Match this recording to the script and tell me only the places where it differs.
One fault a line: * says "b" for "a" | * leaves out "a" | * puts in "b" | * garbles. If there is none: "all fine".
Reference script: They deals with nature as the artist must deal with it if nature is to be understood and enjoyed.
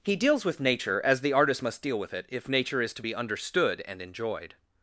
* says "He" for "They"